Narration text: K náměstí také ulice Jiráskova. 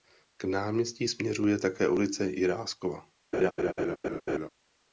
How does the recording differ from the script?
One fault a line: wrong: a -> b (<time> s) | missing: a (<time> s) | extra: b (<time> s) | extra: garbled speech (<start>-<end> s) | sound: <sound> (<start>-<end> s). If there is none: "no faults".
extra: směřuje (1.0 s)
sound: laugh (3.3-4.5 s)